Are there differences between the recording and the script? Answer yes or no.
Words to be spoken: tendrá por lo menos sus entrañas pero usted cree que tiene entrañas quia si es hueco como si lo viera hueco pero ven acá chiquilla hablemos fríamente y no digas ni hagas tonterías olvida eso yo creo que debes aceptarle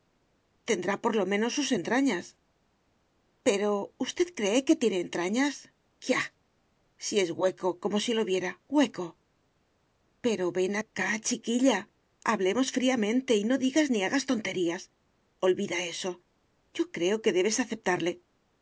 no